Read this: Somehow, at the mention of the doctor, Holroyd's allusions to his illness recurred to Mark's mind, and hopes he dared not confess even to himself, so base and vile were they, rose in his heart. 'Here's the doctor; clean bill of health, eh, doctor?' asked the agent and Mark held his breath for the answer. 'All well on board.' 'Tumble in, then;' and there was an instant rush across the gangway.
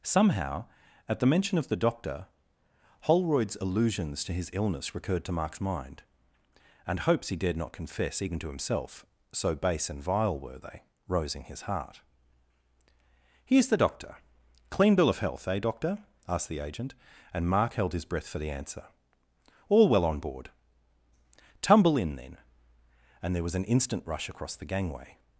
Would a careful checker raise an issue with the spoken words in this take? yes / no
no